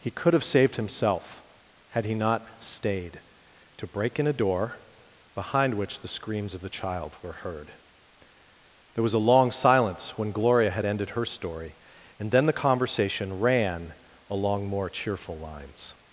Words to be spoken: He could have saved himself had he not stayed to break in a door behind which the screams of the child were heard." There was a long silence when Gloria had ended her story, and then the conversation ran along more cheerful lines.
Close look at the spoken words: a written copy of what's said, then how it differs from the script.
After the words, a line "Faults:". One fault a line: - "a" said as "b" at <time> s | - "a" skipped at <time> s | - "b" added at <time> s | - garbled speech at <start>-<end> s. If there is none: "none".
He could have saved himself had he not stayed to break in a door behind which the screams of the child were heard." There was a long silence when Gloria had ended her story, and then the conversation ran along more cheerful lines.
Faults:
none